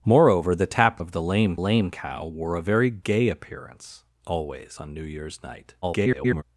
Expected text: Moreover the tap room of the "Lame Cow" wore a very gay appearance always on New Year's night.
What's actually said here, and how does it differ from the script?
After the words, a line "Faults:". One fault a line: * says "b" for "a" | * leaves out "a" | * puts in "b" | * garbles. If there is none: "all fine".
Moreover the tap of the "Lame lame Cow" wore a very gay appearance always on New Year's night. [garbled]
Faults:
* leaves out "room"
* puts in "lame"
* garbles